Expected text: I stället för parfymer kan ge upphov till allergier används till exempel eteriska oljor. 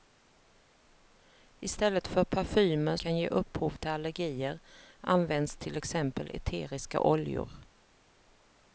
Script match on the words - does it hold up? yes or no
yes